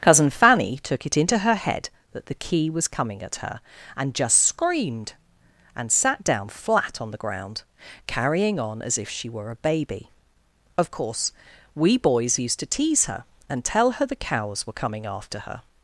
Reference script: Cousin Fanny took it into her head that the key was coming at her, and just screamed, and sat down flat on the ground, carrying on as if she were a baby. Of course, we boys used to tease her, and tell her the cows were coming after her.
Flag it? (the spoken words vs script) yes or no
no